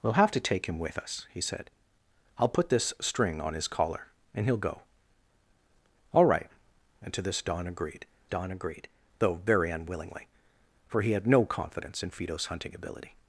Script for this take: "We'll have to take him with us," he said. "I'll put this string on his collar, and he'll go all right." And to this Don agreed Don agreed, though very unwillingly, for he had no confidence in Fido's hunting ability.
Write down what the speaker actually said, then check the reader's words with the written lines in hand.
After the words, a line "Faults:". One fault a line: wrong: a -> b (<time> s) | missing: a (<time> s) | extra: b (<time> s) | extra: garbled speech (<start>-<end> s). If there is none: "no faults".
"We'll have to take him with us," he said. "I'll put this string on his collar, and he'll go all right." And to this Don agreed Don agreed, though very unwillingly, for he had no confidence in Fido's hunting ability.
Faults:
no faults